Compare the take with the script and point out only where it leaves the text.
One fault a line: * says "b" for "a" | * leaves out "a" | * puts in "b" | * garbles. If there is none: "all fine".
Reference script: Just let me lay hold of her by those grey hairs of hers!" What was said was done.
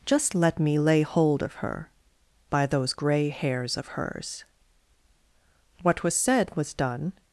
all fine